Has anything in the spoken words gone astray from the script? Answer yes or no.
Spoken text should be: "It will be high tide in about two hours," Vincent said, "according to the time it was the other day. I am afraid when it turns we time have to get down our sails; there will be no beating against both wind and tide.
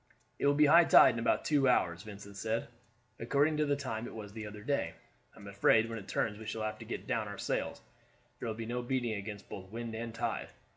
yes